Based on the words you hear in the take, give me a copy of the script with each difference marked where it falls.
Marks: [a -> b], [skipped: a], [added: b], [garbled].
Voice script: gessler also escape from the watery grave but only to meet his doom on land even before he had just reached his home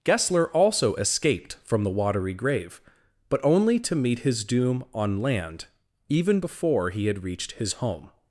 gessler also [escape -> escaped] from the watery grave but only to meet his doom on land even before he had [skipped: just] reached his home